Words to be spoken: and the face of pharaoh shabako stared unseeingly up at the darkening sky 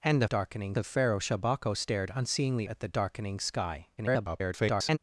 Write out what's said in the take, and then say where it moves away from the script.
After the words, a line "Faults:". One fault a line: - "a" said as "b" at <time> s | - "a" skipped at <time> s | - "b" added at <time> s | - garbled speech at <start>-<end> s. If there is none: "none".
and the darkening of pharaoh shabako stared unseeingly at the darkening sky [garbled]
Faults:
- "face" said as "darkening" at 0.2 s
- "up" skipped at 2.7 s
- garbled speech at 4.0-5.0 s